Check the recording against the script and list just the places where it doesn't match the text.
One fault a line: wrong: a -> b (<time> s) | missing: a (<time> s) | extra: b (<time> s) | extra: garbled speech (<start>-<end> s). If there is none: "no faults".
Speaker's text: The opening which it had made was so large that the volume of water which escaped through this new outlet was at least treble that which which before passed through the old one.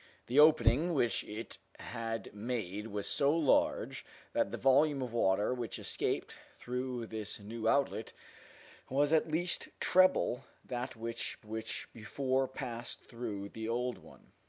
no faults